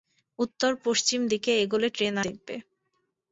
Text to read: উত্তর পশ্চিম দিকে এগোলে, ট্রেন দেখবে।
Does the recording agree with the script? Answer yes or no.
yes